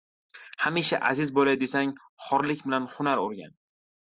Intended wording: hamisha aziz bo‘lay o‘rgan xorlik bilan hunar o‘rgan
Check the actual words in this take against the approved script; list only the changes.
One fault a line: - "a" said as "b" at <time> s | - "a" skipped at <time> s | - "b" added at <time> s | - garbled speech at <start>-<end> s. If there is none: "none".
- "o‘rgan" said as "desang" at 1.6 s